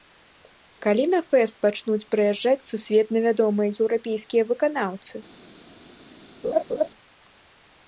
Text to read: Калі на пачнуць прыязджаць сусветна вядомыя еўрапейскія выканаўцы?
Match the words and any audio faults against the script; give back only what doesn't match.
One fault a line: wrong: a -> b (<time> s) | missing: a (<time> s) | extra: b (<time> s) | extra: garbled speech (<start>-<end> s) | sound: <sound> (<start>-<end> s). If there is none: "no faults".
extra: фэст (1.3 s)
sound: laugh (6.4-6.9 s)